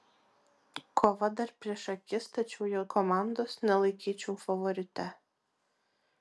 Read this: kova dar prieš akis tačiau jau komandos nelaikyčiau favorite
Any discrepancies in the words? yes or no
no